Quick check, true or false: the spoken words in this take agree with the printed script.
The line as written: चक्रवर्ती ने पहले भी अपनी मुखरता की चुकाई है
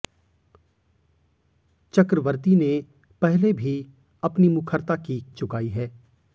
true